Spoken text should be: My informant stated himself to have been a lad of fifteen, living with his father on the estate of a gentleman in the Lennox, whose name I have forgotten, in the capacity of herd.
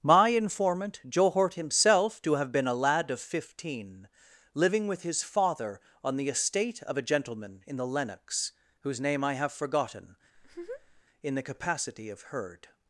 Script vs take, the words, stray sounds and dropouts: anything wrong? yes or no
yes